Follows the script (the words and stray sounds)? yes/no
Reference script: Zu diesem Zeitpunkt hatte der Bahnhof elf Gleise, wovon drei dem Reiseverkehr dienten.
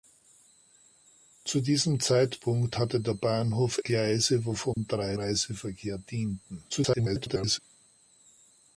no